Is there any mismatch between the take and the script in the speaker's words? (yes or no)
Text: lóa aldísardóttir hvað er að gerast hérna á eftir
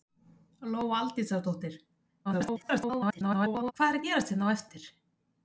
yes